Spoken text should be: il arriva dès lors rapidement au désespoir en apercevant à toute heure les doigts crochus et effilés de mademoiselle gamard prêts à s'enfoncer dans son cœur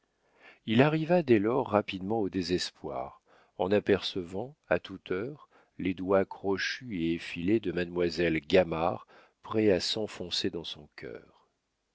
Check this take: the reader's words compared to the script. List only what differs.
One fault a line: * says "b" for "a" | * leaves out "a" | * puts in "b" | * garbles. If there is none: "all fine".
all fine